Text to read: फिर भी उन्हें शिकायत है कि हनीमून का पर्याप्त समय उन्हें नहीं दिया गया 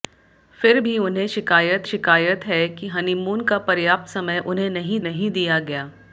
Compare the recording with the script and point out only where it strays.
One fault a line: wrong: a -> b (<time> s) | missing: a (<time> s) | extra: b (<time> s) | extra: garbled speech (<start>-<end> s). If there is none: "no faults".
extra: शिकायत (1.8 s)
extra: नहीं (5.0 s)